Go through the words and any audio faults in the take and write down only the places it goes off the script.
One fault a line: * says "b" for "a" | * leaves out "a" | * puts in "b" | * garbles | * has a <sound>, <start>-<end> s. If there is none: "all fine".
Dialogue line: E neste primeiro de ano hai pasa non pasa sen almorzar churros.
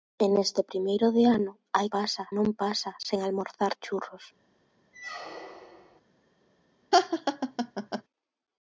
* has a squeak, 4.9-6.0 s
* has a laugh, 6.9-8.0 s